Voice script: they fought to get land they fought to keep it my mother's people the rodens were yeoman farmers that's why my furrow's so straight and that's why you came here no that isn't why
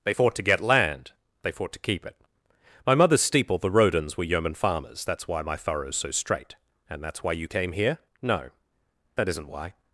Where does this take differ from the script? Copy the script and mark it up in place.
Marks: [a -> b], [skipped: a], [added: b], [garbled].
they fought to get land they fought to keep it my mother's [people -> steeple] the rodens were yeoman farmers that's why my furrow's so straight and that's why you came here no that isn't why